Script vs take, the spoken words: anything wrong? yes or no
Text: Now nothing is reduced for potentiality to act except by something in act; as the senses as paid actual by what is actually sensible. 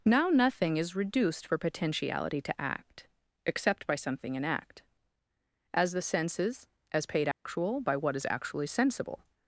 no